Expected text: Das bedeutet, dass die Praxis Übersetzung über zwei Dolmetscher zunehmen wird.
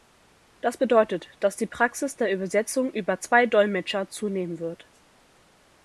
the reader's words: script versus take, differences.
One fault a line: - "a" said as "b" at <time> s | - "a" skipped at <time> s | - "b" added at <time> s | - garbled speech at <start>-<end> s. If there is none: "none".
- "der" added at 2.1 s